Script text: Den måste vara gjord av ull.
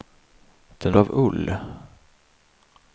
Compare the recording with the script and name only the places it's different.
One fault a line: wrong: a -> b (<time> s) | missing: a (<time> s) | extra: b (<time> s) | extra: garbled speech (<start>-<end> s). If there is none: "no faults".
missing: måste vara gjord (0.9 s)